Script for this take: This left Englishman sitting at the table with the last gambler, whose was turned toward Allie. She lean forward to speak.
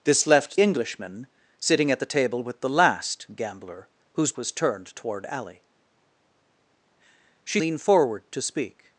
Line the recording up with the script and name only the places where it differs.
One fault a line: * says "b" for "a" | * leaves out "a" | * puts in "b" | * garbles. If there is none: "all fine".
all fine